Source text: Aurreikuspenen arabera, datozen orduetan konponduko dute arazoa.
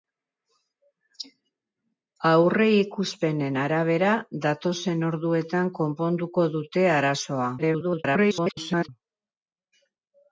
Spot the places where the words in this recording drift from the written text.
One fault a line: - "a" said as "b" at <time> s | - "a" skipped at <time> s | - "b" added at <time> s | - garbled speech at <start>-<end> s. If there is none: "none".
- garbled speech at 7.6-8.9 s